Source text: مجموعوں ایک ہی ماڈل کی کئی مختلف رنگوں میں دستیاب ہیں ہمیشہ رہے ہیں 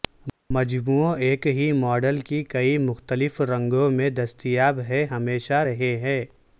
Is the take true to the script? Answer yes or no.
yes